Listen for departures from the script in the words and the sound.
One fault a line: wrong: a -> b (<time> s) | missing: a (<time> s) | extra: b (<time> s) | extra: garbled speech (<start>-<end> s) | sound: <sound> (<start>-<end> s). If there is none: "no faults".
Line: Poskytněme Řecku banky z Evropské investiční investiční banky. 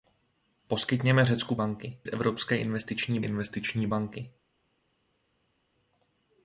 no faults